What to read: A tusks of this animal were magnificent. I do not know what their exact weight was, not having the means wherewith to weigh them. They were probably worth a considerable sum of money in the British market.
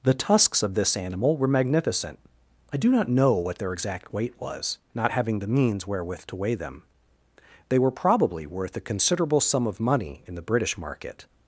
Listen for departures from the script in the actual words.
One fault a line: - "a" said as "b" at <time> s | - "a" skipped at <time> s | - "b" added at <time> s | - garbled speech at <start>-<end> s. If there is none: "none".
- "A" said as "The" at 0.0 s